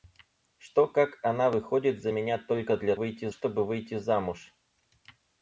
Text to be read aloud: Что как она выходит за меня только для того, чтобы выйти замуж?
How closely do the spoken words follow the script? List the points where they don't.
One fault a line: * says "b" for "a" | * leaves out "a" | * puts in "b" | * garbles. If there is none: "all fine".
* says "выйти" for "того"